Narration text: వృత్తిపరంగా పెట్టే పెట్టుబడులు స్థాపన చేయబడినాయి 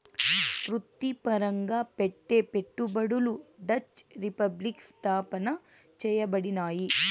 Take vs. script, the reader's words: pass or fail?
fail